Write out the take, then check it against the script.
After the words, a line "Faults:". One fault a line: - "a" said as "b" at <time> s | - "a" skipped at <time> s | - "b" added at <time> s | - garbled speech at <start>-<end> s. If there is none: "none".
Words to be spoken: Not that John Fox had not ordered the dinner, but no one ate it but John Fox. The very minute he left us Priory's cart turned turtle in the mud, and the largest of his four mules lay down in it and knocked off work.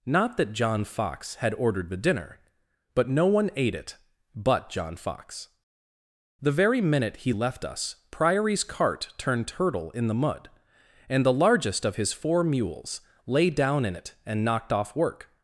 Not that John Fox had ordered the dinner, but no one ate it but John Fox. The very minute he left us Priory's cart turned turtle in the mud, and the largest of his four mules lay down in it and knocked off work.
Faults:
- "not" skipped at 1.5 s